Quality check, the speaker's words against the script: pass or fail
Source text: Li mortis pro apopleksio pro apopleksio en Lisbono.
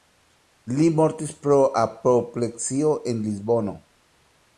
fail